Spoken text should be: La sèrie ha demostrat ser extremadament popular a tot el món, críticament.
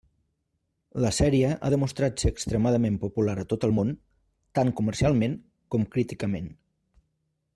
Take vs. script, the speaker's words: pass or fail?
fail